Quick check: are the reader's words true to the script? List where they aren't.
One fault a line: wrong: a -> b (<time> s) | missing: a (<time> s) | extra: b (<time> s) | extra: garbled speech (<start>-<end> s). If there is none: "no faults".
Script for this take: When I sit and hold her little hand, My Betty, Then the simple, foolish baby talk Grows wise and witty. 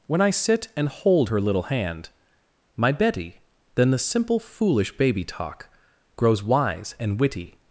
no faults